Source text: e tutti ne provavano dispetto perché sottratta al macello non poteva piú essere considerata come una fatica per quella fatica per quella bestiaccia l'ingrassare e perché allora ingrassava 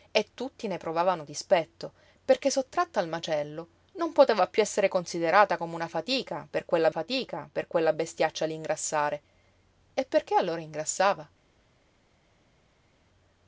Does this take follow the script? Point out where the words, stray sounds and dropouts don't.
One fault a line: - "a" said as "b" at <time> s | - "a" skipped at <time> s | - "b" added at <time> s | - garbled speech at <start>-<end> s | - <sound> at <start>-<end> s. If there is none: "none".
none